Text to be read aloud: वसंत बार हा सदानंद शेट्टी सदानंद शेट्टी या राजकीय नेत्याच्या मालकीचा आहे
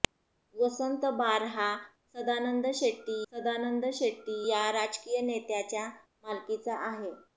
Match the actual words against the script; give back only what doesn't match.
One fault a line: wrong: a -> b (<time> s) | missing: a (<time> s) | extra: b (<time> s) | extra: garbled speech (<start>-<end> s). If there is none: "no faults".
no faults